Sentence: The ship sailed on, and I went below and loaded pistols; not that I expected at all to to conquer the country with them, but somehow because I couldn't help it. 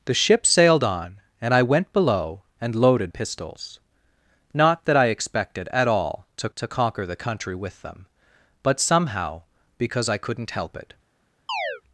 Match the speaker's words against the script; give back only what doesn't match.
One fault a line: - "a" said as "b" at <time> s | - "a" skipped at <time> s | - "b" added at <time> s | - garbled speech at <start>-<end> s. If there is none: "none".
none